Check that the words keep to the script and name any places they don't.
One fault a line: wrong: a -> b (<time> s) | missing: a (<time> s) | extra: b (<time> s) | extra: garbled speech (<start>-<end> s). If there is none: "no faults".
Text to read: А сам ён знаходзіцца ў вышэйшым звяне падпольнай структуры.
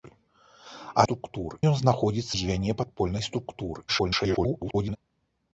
wrong: сам -> структуры (1.1 s)
missing: ў вышэйшым (2.3 s)
extra: garbled speech (3.9-5.0 s)